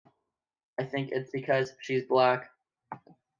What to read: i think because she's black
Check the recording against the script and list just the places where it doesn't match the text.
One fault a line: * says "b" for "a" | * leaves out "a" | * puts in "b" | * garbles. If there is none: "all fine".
* puts in "it's"